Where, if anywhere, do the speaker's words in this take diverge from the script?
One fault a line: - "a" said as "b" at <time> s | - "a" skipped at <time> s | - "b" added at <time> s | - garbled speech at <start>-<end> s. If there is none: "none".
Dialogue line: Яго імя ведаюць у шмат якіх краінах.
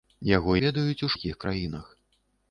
- "імя" skipped at 0.5 s
- "шмат" skipped at 1.1 s